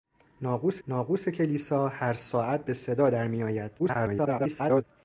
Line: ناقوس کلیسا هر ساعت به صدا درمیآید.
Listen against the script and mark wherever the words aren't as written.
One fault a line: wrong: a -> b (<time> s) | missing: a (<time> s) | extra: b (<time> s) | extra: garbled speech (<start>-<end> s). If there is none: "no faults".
extra: ناقوس (0.9 s)
extra: garbled speech (3.8-4.8 s)